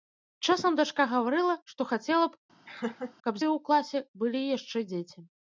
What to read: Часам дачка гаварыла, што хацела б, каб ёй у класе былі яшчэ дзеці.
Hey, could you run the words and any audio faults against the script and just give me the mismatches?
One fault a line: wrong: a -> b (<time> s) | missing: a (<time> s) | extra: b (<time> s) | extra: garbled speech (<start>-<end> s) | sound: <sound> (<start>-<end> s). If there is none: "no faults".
sound: laugh (2.7-3.1 s)